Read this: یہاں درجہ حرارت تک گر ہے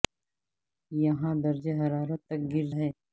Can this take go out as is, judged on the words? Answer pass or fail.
pass